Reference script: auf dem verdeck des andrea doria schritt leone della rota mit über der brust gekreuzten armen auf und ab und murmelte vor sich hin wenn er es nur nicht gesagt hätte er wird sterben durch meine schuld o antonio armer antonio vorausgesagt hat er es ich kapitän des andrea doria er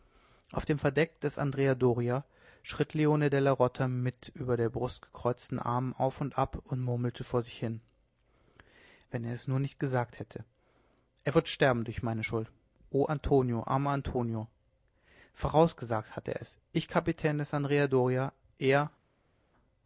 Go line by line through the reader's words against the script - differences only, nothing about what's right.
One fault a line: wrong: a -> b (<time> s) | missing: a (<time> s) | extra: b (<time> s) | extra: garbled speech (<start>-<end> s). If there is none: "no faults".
no faults